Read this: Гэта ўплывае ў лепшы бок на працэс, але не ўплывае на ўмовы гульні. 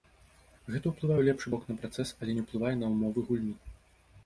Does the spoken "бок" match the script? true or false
true